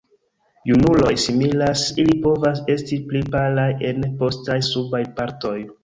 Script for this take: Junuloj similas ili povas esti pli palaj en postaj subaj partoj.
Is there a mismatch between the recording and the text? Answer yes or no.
no